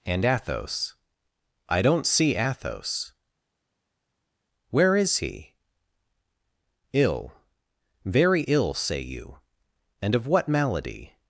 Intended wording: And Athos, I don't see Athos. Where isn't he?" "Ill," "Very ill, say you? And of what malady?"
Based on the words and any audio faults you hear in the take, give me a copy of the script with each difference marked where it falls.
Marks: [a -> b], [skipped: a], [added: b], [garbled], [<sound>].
And Athos, I don't see Athos. Where [isn't -> is] he?" "Ill," "Very ill, say you? And of what malady?"